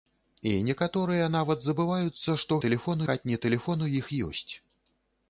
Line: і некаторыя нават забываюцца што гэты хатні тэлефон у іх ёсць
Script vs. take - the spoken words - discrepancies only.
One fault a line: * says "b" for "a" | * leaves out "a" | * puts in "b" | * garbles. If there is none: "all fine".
* says "тэлефон" for "гэты"